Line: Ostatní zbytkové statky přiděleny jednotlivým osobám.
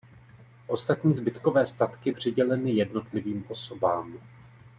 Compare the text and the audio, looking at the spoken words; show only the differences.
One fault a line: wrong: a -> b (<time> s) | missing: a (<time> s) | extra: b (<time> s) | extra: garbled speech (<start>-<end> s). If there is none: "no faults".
no faults